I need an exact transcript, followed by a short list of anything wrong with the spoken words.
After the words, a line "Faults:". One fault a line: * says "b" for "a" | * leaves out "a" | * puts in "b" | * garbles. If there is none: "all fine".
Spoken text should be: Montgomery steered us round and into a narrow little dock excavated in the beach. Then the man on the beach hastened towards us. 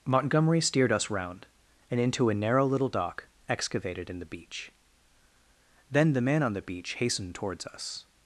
Montgomery steered us round and into a narrow little dock excavated in the beach. Then the man on the beach hastened towards us.
Faults:
all fine